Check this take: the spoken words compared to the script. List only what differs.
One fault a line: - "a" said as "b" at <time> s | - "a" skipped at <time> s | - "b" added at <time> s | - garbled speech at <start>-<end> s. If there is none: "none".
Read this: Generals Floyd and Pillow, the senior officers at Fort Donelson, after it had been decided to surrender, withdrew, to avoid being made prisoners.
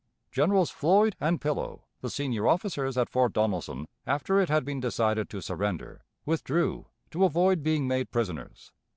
none